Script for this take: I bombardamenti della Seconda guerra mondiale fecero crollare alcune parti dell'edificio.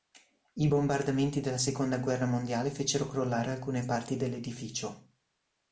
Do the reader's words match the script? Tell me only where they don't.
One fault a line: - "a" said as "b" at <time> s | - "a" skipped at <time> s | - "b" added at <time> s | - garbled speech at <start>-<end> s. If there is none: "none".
none